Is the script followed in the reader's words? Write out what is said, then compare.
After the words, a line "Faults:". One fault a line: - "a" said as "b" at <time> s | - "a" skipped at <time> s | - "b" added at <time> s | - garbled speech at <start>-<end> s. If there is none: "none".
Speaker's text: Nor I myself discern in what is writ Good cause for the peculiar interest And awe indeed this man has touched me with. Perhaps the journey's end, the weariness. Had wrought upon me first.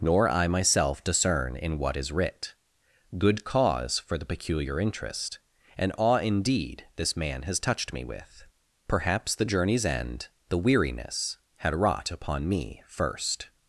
Nor I myself discern in what is writ Good cause for the peculiar interest And awe indeed this man has touched me with. Perhaps the journey's end, the weariness. Had wrought upon me first.
Faults:
none